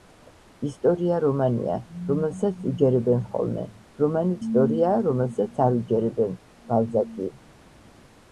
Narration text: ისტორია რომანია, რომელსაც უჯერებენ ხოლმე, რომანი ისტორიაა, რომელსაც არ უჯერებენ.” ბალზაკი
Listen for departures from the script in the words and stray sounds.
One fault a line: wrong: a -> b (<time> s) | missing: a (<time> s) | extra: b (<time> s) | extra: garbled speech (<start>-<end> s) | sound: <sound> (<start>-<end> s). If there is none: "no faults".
no faults